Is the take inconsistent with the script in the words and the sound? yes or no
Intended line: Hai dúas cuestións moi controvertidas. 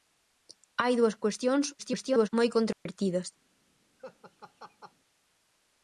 yes